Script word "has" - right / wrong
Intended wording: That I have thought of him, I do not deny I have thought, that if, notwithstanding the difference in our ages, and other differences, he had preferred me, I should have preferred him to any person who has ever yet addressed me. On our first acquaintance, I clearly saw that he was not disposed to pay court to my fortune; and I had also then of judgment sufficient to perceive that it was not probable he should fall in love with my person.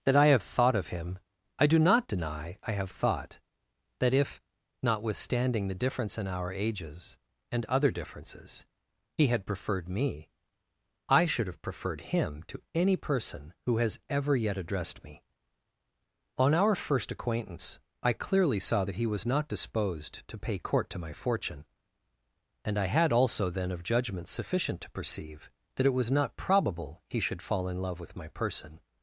right